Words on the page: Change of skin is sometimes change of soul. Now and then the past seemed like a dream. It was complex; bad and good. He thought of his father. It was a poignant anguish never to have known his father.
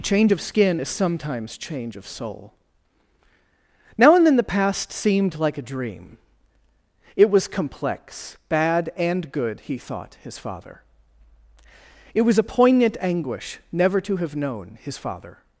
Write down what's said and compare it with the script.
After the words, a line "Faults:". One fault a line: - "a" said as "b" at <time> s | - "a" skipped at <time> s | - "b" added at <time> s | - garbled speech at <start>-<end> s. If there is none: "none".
Change of skin is sometimes change of soul. Now and then the past seemed like a dream. It was complex; bad and good. He thought his father. It was a poignant anguish never to have known his father.
Faults:
- "of" skipped at 10.2 s